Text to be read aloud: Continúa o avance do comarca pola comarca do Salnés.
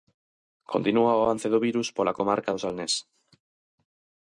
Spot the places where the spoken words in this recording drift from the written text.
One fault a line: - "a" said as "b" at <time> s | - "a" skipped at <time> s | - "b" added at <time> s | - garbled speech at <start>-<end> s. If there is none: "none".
- "comarca" said as "virus" at 1.7 s